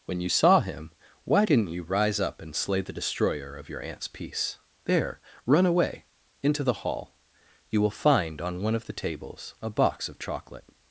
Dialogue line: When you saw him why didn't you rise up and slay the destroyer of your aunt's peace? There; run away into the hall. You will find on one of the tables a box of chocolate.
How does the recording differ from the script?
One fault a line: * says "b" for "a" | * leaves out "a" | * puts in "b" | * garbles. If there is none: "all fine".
all fine